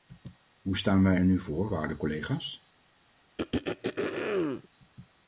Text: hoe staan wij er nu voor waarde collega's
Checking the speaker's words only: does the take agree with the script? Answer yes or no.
yes